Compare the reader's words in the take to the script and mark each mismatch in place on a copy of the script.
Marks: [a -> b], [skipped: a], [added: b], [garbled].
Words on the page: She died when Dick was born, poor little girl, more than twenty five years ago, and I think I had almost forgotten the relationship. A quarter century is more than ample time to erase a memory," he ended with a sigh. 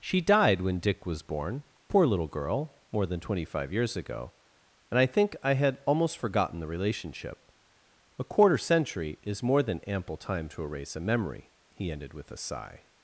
She died when Dick was born, poor little girl, more than twenty five years ago, and I think I had almost forgotten the relationship. A quarter century is more than ample time to erase a memory," he ended with a sigh.